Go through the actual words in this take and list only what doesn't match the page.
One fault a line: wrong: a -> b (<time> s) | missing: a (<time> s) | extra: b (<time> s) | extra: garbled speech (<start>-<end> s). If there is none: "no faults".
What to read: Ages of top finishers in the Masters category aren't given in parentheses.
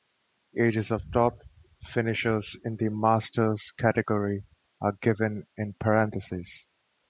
wrong: aren't -> are (4.8 s)